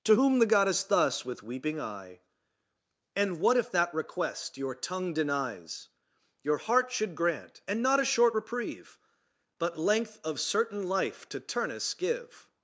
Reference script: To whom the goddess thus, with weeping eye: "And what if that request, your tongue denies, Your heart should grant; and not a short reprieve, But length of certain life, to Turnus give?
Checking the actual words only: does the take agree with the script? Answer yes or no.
yes